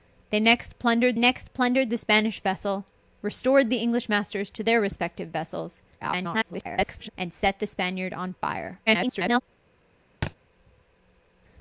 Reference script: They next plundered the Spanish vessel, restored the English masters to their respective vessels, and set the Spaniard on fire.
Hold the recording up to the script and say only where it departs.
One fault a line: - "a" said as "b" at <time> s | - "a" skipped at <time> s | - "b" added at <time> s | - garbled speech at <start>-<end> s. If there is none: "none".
- "next plundered" added at 1.2 s
- garbled speech at 6.0-7.1 s
- garbled speech at 8.9-9.4 s